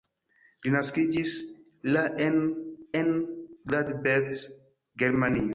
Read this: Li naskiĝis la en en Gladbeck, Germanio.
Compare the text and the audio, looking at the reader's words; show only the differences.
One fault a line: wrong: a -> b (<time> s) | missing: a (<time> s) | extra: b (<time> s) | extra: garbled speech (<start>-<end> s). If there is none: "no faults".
no faults